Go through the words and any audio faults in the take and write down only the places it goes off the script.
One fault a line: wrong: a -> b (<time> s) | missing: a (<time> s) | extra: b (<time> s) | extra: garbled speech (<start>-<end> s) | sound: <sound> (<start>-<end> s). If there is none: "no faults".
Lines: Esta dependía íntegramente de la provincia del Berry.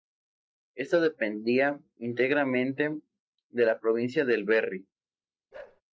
sound: bark (5.5-5.8 s)